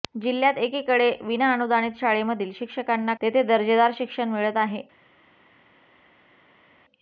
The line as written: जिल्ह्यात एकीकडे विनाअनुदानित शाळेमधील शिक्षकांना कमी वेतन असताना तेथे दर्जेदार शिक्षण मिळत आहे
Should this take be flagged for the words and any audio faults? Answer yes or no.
yes